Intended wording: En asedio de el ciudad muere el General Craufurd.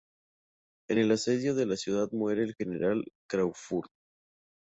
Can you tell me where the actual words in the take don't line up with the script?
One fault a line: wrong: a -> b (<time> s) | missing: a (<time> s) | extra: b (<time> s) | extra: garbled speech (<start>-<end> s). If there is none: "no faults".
extra: el (1.0 s)
wrong: el -> la (1.6 s)